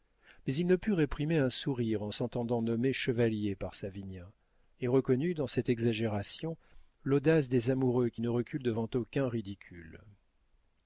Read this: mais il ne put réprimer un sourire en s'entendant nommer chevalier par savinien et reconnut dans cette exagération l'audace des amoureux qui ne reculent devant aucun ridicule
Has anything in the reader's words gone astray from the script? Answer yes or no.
no